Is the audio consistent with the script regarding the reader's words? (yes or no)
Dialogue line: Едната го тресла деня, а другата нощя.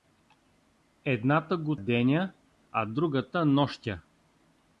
no